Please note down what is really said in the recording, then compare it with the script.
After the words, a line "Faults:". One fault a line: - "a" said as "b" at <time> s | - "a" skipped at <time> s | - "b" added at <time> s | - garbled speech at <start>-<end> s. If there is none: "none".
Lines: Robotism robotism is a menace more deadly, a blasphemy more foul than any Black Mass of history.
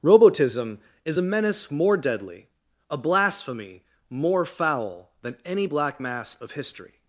Robotism is a menace more deadly, a blasphemy more foul than any Black Mass of history.
Faults:
- "robotism" skipped at 0.8 s